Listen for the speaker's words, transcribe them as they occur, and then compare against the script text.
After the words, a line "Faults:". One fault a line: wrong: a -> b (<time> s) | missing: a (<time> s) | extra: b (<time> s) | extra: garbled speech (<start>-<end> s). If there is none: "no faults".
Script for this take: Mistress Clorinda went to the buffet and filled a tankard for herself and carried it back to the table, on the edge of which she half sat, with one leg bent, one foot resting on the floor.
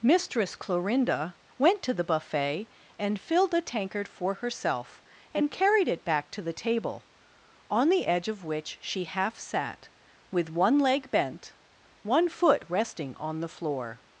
Mistress Clorinda went to the buffet and filled a tankard for herself and carried it back to the table, on the edge of which she half sat, with one leg bent, one foot resting on the floor.
Faults:
no faults